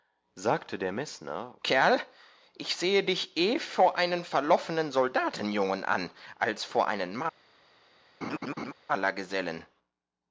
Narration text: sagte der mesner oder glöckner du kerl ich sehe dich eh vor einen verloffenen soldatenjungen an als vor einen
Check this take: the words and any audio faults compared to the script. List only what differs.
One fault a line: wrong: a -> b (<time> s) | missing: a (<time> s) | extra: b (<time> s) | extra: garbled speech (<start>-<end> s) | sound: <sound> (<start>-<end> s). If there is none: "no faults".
missing: oder glöckner du (1.5 s)
sound: laugh (8.2-8.7 s)